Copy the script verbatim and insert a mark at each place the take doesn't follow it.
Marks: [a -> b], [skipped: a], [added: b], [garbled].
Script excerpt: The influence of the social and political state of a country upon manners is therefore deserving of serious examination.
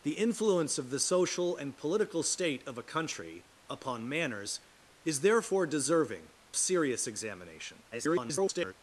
The influence of the social and political state of a country upon manners is therefore deserving [skipped: of] serious examination. [garbled]